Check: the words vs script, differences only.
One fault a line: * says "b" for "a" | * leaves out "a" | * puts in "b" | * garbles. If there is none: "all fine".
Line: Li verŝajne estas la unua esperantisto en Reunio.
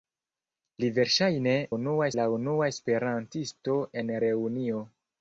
* says "unua" for "estas"